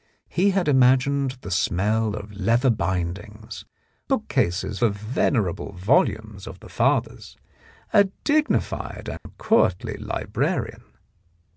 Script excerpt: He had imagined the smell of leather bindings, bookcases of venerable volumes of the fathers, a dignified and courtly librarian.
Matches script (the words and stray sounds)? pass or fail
fail